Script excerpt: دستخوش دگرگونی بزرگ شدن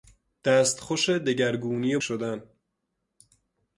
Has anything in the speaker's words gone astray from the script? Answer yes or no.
yes